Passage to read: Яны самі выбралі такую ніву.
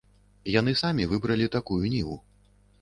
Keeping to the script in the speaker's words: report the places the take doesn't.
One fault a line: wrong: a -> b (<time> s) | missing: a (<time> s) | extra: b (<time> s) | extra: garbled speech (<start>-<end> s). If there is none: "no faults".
no faults